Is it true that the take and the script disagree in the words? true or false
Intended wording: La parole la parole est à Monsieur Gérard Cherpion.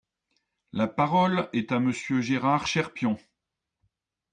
true